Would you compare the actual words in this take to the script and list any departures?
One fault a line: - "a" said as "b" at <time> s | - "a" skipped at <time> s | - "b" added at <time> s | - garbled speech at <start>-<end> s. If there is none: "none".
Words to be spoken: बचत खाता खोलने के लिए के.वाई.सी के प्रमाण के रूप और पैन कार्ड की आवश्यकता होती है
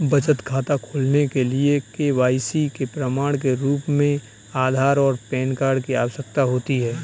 - "में आधार" added at 3.9 s